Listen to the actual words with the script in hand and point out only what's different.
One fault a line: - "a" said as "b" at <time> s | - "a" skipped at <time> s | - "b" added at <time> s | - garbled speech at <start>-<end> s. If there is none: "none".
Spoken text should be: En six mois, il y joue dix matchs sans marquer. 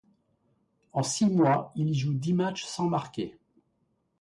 none